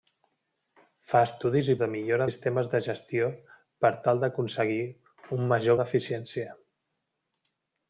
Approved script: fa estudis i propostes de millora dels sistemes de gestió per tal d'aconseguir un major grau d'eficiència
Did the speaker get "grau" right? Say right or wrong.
wrong